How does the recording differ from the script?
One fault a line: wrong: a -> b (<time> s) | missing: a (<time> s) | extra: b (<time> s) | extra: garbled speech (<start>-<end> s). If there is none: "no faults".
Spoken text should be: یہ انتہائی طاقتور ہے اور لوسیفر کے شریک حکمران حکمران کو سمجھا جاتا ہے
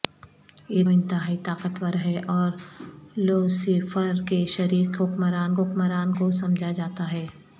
no faults